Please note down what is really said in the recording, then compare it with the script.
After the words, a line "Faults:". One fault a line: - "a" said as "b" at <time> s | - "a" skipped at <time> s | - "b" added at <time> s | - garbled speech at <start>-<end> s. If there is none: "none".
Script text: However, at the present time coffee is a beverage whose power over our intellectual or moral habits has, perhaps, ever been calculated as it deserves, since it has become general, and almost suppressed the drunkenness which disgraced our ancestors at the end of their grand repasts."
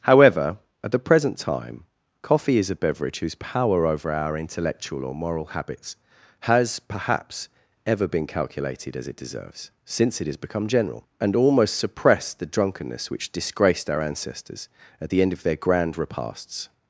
However, at the present time coffee is a beverage whose power over our intellectual or moral habits has, perhaps, ever been calculated as it deserves, since it has become general, and almost suppressed the drunkenness which disgraced our ancestors at the end of their grand repasts."
Faults:
none